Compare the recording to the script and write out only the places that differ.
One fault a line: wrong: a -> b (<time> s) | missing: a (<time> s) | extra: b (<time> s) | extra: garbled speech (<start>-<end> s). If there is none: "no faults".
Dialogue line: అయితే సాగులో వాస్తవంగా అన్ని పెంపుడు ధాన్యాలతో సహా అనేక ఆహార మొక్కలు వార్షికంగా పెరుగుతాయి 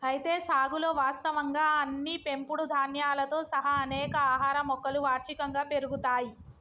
no faults